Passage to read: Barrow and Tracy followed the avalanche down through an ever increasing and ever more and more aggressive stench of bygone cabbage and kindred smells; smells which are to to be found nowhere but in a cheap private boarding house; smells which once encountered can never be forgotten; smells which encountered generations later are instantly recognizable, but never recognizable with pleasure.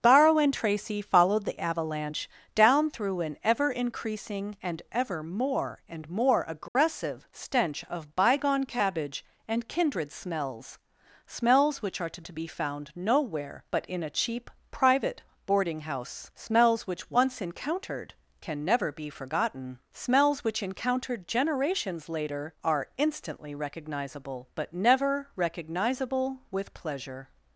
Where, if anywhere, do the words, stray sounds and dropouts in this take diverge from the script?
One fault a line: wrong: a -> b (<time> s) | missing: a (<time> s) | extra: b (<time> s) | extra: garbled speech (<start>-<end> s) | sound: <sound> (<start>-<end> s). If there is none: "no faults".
sound: dropout (6.7-6.7 s)